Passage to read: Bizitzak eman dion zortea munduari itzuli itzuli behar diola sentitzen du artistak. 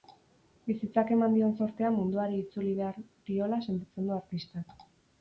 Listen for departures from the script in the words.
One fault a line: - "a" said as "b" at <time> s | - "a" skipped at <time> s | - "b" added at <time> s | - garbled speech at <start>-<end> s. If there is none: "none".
- "itzuli" skipped at 2.7 s